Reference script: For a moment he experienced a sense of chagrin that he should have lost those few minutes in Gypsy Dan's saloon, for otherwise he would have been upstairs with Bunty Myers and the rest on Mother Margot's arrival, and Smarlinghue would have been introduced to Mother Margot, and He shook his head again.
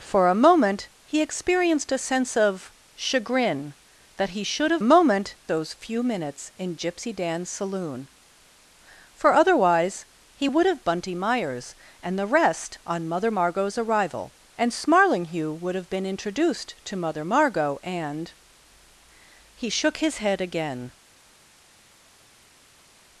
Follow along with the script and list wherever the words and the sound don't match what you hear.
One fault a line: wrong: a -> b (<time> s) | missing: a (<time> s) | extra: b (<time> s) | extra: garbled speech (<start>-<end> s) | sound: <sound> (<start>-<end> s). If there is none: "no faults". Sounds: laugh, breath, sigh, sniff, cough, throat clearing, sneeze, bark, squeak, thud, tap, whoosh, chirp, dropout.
wrong: lost -> moment (4.8 s)
missing: been upstairs with (10.8 s)